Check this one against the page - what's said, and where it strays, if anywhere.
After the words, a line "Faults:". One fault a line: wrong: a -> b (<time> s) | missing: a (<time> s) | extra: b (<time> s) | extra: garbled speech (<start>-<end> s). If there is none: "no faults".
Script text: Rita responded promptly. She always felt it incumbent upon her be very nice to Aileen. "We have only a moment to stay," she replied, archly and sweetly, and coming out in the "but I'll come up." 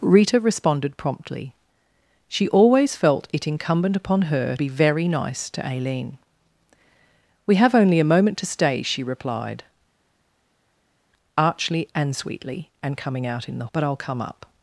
Rita responded promptly. She always felt it incumbent upon her be very nice to Aileen. "We have only a moment to stay," she replied, archly and sweetly, and coming out in the "but I'll come up."
Faults:
no faults